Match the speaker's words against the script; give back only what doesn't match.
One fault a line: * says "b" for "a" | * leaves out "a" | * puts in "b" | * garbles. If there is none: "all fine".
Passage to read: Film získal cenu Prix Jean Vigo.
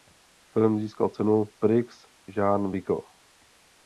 all fine